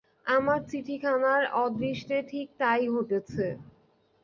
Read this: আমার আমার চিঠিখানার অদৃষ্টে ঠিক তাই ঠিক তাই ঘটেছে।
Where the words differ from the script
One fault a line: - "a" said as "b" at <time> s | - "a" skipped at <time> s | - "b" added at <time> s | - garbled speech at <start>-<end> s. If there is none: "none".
- "আমার" skipped at 0.6 s
- "ঠিক তাই" skipped at 2.8 s